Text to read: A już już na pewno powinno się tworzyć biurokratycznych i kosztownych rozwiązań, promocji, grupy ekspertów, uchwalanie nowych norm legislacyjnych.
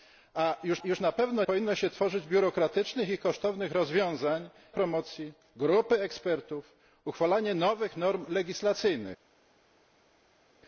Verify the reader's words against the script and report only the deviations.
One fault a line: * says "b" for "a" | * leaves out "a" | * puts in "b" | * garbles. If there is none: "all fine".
all fine